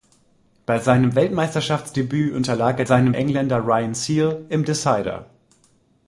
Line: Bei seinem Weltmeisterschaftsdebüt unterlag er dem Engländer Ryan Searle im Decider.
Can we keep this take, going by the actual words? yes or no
no